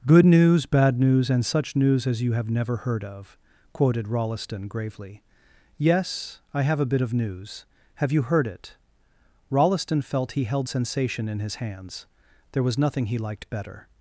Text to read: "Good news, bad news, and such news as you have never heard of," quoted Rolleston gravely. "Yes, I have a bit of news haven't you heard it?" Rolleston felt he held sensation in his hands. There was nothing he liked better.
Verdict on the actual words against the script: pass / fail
fail